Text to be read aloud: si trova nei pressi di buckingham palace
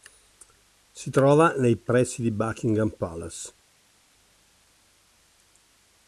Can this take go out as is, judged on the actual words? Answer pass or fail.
pass